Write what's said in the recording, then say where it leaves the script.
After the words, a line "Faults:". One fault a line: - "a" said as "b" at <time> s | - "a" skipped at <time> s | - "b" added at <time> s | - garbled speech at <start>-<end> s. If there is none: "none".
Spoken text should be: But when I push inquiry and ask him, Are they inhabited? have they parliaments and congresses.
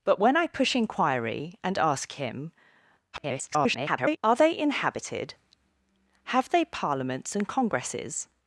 But when I push inquiry and ask him, [garbled] Are they inhabited? have they parliaments and congresses.
Faults:
- garbled speech at 3.1-4.2 s